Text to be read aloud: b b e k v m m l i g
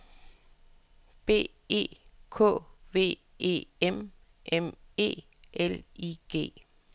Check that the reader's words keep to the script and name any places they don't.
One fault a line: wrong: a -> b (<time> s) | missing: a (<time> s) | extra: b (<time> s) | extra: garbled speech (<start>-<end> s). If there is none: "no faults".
missing: b (1.5 s)
extra: e (3.4 s)
extra: e (5.0 s)